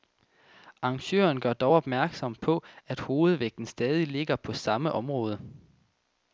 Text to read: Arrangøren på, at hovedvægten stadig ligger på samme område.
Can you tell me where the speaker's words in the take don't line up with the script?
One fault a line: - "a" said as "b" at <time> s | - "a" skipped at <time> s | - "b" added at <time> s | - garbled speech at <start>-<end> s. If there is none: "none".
- "gør dog opmærksom" added at 1.4 s